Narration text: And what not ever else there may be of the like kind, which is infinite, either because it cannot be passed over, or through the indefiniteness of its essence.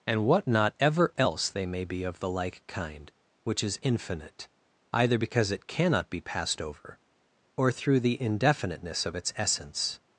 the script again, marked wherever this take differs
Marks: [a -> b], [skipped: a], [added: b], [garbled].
And what not ever else [there -> they] may be of the like kind, which is infinite, either because it cannot be passed over, or through the indefiniteness of its essence.